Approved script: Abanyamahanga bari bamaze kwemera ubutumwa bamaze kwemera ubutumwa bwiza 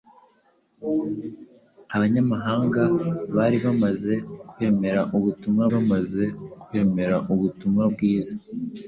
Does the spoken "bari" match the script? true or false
true